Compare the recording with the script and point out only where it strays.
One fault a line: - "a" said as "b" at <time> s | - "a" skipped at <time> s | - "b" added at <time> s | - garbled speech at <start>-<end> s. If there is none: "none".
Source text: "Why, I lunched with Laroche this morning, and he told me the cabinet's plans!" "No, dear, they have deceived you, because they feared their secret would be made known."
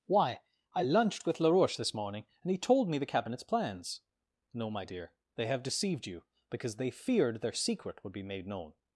- "my" added at 4.7 s